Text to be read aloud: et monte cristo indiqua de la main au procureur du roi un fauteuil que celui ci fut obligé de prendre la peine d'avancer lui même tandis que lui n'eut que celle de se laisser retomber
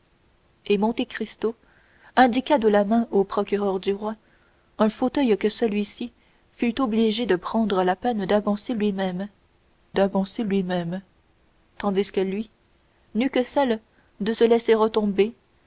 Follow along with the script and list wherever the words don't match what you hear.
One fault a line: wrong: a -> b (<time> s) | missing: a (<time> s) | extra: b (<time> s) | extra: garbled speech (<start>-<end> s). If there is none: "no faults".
extra: d'avancer lui même (9.9 s)